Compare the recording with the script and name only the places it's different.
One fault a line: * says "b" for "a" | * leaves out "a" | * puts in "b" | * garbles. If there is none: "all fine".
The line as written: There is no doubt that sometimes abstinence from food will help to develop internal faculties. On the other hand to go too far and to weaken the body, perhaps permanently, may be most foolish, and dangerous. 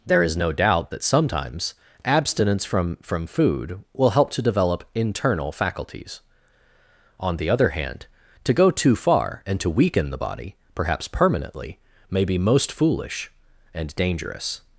* puts in "from"